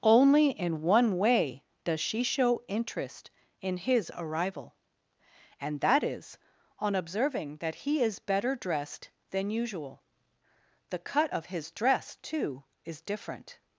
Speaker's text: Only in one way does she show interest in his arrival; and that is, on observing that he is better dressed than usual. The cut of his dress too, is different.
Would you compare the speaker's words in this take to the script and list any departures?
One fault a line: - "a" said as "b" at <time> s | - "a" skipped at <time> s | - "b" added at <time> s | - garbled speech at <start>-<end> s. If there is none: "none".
none